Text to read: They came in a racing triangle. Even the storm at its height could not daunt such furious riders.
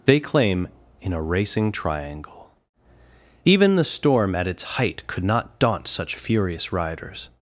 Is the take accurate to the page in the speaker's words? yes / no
no